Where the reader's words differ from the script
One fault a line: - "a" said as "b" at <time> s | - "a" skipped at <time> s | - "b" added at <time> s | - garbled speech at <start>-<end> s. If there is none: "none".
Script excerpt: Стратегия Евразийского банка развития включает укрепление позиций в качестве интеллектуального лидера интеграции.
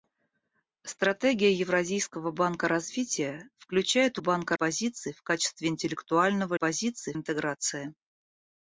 - "укрепление" said as "банка" at 4.2 s
- "лидера" said as "позиций" at 6.5 s